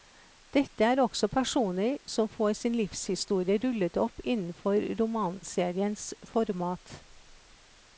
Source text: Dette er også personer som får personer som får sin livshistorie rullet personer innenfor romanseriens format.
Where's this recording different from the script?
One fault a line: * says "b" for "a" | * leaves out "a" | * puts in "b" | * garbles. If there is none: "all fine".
* leaves out "personer som får"
* says "opp" for "personer"